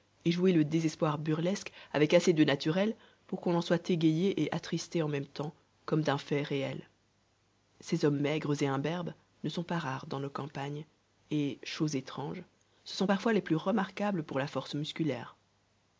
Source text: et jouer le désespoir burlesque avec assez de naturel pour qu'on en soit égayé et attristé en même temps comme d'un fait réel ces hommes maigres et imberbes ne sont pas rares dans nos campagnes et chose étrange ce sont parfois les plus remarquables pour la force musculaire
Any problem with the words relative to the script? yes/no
no